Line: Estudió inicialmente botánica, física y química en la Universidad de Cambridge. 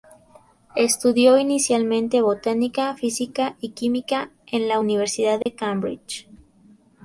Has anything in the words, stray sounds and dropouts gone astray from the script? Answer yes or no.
yes